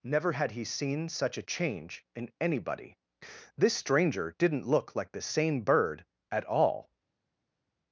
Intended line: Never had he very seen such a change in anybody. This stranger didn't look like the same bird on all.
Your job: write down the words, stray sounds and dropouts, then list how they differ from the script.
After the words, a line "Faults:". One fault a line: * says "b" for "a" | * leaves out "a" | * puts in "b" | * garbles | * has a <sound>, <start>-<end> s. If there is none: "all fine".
Never had he seen such a change in anybody. This stranger didn't look like the same bird at all.
Faults:
* leaves out "very"
* says "at" for "on"